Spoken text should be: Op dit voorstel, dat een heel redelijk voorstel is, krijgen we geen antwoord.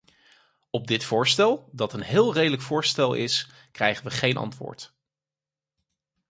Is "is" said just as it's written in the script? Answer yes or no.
yes